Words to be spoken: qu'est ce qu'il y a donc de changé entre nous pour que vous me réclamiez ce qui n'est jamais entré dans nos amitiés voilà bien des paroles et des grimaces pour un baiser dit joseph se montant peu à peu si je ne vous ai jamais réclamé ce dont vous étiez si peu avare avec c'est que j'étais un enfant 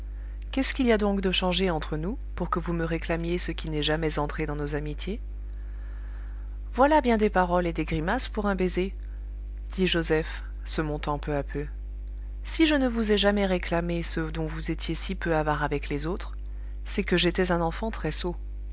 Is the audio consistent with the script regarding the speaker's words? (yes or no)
no